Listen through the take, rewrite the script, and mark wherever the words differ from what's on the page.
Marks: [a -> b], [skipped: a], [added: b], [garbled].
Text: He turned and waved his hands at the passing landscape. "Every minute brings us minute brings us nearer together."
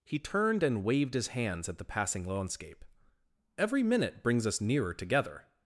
He turned and waved his hands at the passing landscape. "Every minute brings us [skipped: minute brings us] nearer together."